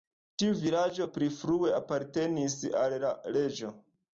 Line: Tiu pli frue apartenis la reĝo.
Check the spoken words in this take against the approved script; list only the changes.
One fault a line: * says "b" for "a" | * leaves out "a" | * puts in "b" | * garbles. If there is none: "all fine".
* puts in "vilaĝo"
* puts in "al"